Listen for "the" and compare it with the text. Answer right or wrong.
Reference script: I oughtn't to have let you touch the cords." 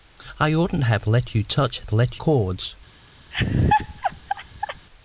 wrong